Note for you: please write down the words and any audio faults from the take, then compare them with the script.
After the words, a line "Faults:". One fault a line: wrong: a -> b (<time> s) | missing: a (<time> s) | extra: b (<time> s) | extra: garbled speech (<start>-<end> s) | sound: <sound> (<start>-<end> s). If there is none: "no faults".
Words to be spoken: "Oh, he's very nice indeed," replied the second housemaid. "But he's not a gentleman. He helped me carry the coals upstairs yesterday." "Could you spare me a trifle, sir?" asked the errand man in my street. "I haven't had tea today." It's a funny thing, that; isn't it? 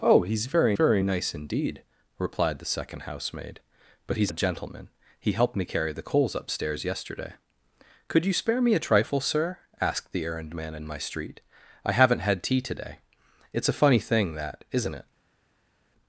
"Oh, he's very very nice indeed," replied the second housemaid. "But he's a gentleman. He helped me carry the coals upstairs yesterday." "Could you spare me a trifle, sir?" asked the errand man in my street. "I haven't had tea today." It's a funny thing, that; isn't it?
Faults:
extra: very (0.7 s)
missing: not (4.3 s)